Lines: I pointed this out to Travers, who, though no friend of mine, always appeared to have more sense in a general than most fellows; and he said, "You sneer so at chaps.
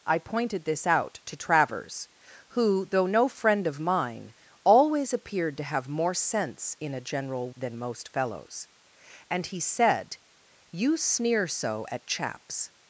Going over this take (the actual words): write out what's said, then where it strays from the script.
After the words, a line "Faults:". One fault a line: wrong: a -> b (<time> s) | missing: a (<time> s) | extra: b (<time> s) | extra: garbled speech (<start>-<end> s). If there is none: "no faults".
I pointed this out to Travers, who, though no friend of mine, always appeared to have more sense in a general than most fellows; and he said, "You sneer so at chaps.
Faults:
no faults